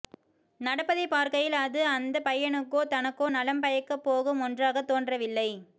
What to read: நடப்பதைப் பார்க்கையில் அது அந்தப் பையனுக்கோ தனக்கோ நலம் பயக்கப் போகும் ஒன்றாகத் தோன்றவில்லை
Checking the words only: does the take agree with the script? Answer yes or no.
yes